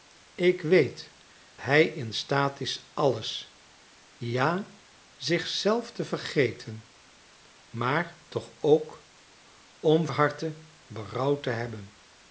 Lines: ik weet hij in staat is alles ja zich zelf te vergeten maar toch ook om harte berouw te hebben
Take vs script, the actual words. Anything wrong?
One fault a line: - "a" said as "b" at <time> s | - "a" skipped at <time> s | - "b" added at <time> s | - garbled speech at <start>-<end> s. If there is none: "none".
none